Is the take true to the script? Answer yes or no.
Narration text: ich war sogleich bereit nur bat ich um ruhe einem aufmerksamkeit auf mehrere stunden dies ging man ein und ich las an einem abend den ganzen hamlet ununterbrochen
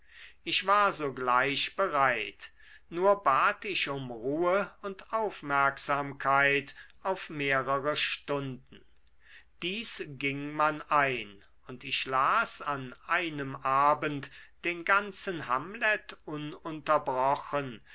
no